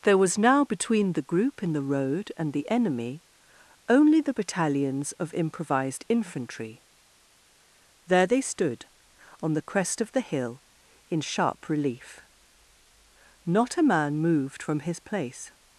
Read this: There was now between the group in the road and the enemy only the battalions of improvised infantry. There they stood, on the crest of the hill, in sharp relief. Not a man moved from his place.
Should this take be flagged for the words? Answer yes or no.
no